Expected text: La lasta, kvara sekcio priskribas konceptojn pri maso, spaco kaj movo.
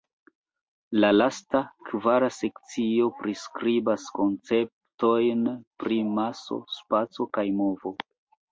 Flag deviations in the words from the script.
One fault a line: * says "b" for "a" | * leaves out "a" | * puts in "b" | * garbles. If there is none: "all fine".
all fine